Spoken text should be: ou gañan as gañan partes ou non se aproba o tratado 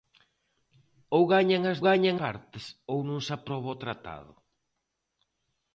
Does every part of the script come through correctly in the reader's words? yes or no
yes